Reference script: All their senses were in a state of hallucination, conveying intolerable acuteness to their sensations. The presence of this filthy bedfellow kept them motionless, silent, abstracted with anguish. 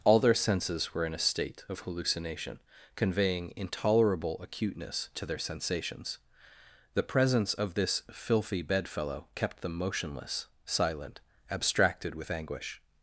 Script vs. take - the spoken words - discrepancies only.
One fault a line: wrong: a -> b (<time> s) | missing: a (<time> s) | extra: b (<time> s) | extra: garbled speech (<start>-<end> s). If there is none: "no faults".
no faults